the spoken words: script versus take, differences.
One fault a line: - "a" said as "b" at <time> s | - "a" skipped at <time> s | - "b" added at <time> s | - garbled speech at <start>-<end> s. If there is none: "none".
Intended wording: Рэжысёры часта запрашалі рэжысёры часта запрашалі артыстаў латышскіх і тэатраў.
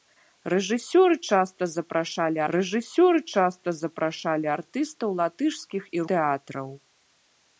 none